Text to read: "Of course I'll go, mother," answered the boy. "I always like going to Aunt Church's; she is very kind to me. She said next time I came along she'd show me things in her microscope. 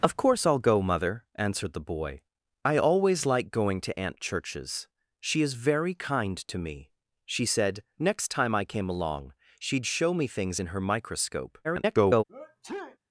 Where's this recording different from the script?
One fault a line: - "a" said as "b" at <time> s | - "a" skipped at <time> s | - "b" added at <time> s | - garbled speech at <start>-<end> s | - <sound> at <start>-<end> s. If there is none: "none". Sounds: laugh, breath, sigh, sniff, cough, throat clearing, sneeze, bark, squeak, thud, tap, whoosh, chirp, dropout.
- garbled speech at 11.6-12.2 s
- sneeze at 12.3-13.0 s